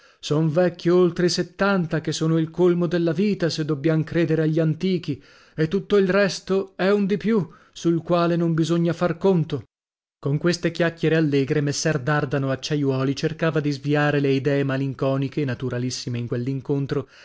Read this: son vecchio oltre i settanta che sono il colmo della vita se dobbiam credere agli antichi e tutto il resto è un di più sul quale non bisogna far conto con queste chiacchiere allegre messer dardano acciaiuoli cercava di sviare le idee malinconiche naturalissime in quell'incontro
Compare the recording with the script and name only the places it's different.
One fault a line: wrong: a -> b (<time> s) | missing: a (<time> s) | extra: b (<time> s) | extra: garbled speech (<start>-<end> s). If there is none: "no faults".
no faults